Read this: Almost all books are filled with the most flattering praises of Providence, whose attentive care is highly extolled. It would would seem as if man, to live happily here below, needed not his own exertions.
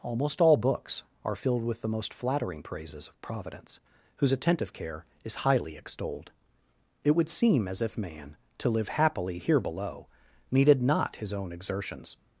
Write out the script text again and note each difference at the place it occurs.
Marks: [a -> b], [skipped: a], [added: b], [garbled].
Almost all books are filled with the most flattering praises of Providence, whose attentive care is highly extolled. It would [skipped: would] seem as if man, to live happily here below, needed not his own exertions.